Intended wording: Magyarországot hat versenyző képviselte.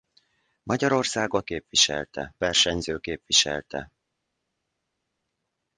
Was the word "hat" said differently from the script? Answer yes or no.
yes